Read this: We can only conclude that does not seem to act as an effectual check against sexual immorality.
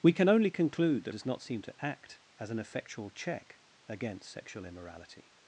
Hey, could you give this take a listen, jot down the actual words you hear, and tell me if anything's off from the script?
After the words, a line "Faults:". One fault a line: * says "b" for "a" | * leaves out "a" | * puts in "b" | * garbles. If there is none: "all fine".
We can only conclude that does not seem to act as an effectual check against sexual immorality.
Faults:
all fine